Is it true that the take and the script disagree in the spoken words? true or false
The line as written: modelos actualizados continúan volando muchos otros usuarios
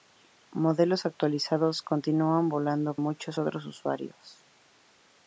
false